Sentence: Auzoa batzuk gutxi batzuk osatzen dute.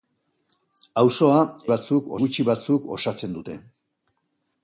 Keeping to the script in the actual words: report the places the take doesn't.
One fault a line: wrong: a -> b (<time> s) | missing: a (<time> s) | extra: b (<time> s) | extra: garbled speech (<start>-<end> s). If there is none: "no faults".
no faults